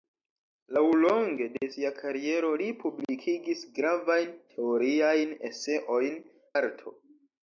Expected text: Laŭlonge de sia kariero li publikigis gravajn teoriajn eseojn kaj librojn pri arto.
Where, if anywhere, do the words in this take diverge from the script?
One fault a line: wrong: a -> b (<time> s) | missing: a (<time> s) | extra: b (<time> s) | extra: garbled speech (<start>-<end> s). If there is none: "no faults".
missing: kaj librojn pri (6.2 s)